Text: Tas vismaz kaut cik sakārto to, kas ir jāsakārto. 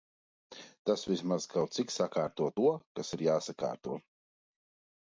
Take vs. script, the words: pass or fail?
pass